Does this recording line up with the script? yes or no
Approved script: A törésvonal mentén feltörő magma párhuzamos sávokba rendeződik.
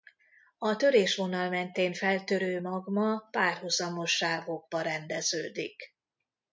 yes